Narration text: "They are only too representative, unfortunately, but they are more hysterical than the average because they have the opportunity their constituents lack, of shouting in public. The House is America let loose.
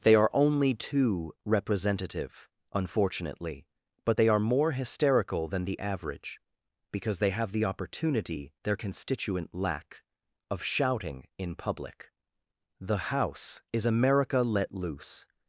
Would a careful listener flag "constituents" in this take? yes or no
yes